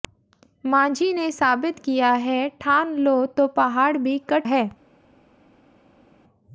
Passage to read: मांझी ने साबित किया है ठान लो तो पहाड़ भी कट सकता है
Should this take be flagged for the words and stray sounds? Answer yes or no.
yes